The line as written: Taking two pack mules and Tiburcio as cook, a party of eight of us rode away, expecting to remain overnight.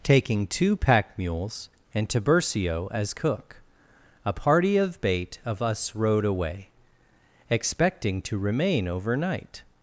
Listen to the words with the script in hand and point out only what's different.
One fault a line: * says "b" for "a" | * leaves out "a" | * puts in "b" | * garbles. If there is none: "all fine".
* says "bait" for "eight"